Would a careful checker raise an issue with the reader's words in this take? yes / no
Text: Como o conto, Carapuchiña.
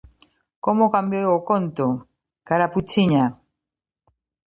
yes